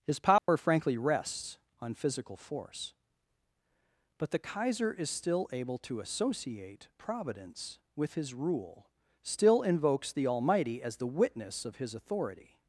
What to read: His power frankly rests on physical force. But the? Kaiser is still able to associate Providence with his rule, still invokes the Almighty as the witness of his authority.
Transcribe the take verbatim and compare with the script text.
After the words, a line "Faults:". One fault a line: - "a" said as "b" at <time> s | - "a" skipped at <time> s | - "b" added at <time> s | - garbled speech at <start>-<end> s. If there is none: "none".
His power frankly rests on physical force. But the? Kaiser is still able to associate Providence with his rule, still invokes the Almighty as the witness of his authority.
Faults:
none